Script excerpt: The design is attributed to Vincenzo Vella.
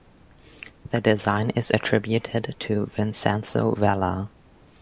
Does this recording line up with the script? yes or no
yes